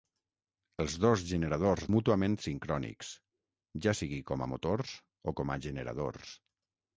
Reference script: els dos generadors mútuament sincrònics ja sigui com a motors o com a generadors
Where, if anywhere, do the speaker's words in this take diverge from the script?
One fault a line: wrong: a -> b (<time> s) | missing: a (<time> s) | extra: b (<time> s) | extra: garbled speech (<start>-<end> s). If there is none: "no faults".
no faults